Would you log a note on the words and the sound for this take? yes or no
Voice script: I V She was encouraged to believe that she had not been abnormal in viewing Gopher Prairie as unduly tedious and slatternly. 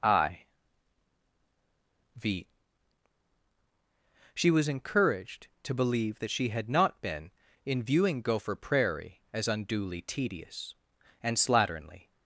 yes